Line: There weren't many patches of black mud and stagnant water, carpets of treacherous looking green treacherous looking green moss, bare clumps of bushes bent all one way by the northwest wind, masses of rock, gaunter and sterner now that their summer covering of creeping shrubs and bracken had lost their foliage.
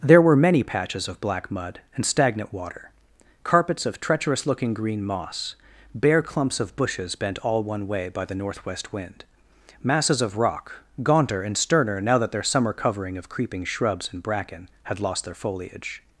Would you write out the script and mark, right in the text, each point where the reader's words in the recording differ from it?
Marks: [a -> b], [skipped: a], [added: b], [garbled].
There [weren't -> were] many patches of black mud and stagnant water, carpets of treacherous looking green [skipped: treacherous looking green] moss, bare clumps of bushes bent all one way by the northwest wind, masses of rock, gaunter and sterner now that their summer covering of creeping shrubs and bracken had lost their foliage.